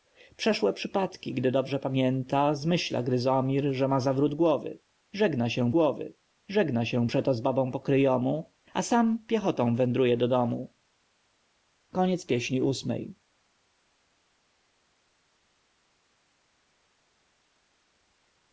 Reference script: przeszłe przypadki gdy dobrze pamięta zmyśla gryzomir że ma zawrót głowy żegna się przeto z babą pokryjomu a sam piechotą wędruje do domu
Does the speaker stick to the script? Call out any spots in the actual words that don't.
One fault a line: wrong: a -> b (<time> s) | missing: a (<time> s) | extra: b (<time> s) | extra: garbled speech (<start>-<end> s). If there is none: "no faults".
extra: głowy żegna się (5.7 s)